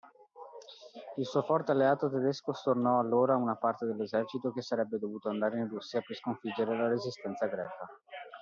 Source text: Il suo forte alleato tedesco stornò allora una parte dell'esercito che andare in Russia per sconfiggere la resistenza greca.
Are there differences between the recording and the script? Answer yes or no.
yes